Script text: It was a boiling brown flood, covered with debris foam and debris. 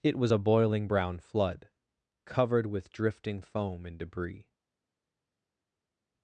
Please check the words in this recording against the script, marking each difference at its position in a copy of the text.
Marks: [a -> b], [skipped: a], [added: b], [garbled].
It was a boiling brown flood, covered with [debris -> drifting] foam and debris.